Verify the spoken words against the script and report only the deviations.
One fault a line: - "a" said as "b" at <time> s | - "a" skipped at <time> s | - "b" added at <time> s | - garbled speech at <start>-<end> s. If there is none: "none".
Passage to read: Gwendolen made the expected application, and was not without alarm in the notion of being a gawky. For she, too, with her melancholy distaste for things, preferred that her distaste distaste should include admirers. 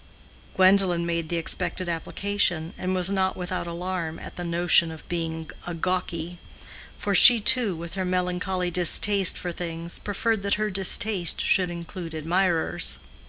- "in" said as "at" at 4.2 s
- "distaste" skipped at 11.4 s